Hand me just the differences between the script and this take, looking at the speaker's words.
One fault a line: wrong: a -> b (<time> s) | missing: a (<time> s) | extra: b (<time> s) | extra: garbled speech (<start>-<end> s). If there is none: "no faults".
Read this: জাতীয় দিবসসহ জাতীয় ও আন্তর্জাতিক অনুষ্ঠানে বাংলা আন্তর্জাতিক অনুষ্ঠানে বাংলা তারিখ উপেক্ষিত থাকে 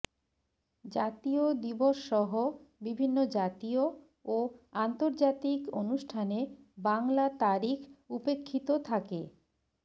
extra: বিভিন্ন (2.8 s)
missing: আন্তর্জাতিক অনুষ্ঠানে বাংলা (7.2 s)